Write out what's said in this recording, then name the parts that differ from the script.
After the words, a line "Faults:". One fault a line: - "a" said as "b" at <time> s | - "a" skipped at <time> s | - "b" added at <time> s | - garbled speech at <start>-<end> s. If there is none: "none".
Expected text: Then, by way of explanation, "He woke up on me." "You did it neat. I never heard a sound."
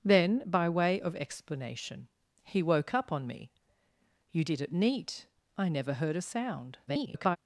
Then, by way of explanation, "He woke up on me." "You did it neat. I never heard a sound." [garbled]
Faults:
- garbled speech at 6.9-7.4 s